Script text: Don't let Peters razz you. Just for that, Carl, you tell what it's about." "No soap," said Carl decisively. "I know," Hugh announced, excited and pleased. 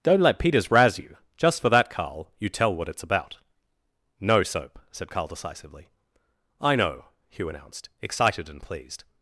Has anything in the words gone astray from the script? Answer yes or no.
no